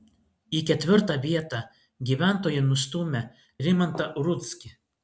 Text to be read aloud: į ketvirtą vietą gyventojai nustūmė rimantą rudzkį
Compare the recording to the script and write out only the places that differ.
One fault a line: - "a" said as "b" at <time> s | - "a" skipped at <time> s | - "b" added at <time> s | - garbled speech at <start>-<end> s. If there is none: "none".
none